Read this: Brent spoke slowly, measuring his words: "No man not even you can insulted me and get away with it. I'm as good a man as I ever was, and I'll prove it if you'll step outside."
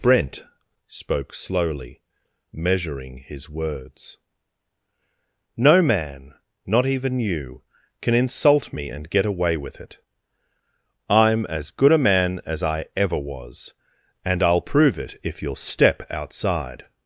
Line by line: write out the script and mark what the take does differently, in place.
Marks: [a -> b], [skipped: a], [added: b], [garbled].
Brent spoke slowly, measuring his words: "No man not even you can [insulted -> insult] me and get away with it. I'm as good a man as I ever was, and I'll prove it if you'll step outside."